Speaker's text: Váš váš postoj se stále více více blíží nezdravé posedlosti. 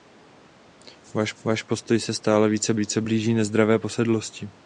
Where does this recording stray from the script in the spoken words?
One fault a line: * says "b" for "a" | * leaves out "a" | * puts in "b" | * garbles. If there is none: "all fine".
all fine